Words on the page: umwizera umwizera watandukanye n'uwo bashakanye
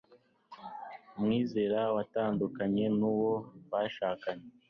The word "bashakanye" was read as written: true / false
true